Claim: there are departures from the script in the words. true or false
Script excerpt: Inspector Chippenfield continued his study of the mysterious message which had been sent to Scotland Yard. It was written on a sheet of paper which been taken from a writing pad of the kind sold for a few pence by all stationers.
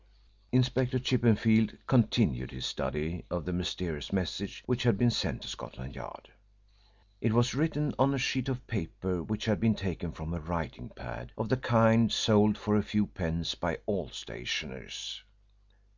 true